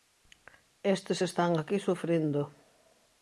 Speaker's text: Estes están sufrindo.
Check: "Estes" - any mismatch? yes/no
no